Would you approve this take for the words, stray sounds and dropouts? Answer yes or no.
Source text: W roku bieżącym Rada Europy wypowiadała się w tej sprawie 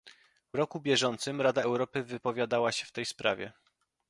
yes